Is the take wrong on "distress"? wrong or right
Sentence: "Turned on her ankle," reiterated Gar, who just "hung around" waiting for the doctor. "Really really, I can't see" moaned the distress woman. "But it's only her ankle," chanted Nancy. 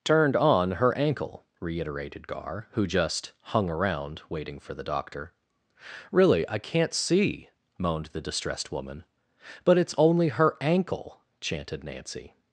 wrong